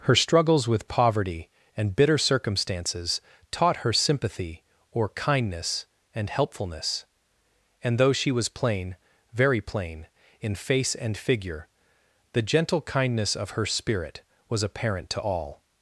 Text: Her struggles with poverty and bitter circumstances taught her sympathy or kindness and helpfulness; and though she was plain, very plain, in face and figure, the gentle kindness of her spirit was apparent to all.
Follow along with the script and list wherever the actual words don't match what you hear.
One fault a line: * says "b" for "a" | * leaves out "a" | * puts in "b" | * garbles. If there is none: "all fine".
all fine